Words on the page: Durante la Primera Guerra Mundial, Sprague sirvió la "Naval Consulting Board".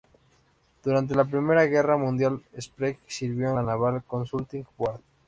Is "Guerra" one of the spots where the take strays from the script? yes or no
no